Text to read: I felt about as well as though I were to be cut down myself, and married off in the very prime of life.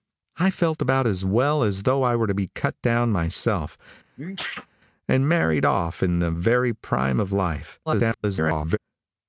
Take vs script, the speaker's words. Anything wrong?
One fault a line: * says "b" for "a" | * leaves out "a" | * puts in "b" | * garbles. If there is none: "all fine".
* garbles